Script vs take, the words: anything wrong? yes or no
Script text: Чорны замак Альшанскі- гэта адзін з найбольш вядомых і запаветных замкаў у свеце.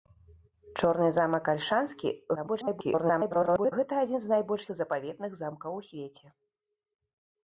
yes